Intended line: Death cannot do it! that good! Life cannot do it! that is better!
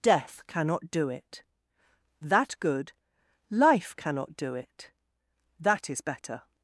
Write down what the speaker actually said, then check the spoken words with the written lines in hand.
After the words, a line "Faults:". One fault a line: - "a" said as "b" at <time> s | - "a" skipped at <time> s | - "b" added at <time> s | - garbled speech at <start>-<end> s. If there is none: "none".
Death cannot do it! that good! Life cannot do it! that is better!
Faults:
none